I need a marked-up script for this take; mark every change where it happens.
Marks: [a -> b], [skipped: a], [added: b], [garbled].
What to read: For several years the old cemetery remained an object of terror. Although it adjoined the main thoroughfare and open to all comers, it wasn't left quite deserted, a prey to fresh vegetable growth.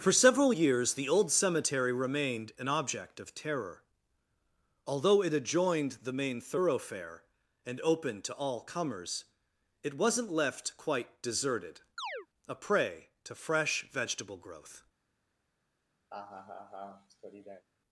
For several years the old cemetery remained an object of terror. Although it adjoined the main thoroughfare and open to all comers, it wasn't left quite deserted, a prey to fresh vegetable growth.